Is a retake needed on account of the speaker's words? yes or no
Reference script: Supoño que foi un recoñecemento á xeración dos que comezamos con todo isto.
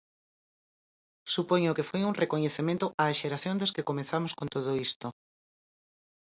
no